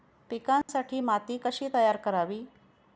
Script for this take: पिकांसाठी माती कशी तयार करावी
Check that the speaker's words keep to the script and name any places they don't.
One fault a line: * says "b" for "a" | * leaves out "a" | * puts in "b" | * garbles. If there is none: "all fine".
all fine